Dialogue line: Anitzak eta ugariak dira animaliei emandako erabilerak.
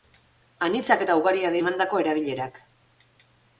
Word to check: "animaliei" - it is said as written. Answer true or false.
false